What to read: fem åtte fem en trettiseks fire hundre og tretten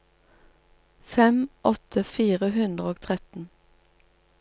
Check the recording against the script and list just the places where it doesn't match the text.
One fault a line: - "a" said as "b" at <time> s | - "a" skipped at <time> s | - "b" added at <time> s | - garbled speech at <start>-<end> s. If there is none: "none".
- "fem en trettiseks" skipped at 2.0 s